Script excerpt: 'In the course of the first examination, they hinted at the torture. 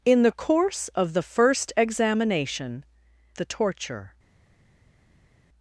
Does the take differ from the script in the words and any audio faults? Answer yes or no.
yes